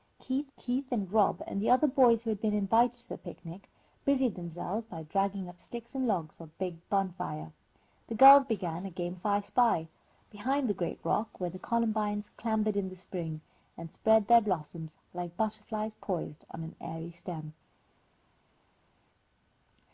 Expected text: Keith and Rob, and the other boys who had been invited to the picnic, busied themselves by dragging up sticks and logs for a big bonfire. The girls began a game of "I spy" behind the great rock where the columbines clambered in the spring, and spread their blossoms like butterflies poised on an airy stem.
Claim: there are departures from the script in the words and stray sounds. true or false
true